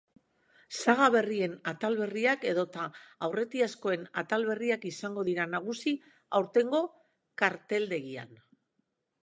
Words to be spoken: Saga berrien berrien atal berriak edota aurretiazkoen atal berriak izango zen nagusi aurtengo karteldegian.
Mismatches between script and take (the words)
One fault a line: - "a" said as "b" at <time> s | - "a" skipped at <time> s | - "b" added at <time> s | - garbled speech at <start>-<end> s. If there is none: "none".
- "berrien" skipped at 1.5 s
- "zen" said as "dira" at 5.3 s